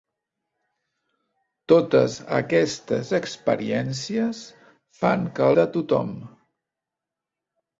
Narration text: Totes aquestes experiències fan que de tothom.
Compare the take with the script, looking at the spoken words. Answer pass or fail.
pass